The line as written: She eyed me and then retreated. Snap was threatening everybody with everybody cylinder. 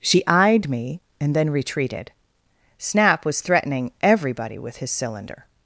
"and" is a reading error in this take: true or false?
false